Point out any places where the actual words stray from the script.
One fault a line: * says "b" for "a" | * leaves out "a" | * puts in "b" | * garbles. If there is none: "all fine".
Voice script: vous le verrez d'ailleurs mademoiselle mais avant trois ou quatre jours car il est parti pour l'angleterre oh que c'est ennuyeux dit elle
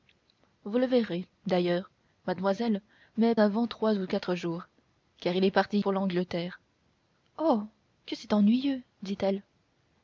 all fine